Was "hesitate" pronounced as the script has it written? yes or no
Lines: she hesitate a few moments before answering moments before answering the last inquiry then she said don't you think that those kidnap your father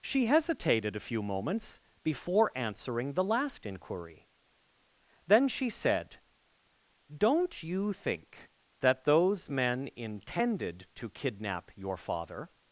no